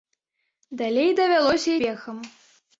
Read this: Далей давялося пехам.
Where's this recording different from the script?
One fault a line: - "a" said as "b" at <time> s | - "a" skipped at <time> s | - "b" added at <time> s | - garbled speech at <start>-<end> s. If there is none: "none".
none